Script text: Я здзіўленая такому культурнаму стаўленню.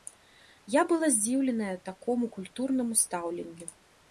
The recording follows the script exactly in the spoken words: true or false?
false